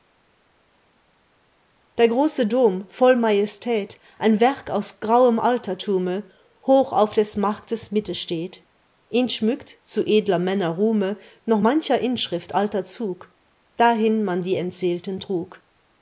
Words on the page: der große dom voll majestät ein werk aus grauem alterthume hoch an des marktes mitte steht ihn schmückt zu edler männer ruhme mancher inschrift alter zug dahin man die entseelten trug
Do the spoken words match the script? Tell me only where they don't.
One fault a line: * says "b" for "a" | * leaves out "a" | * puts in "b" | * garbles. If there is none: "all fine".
* says "auf" for "an"
* puts in "noch"